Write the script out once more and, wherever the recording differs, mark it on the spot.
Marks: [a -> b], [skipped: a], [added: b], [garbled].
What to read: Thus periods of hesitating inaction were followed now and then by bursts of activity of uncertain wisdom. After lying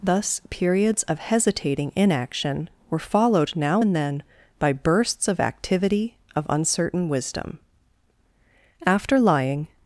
Thus periods of hesitating inaction were followed now and then by bursts of activity of uncertain wisdom. After lying